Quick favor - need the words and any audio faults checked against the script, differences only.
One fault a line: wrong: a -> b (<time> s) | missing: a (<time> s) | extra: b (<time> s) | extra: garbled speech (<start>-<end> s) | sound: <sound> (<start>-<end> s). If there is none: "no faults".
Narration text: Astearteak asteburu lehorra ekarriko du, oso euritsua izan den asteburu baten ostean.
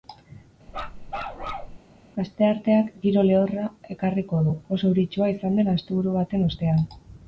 sound: bark (0.7-1.8 s)
wrong: asteburu -> giro (3.0 s)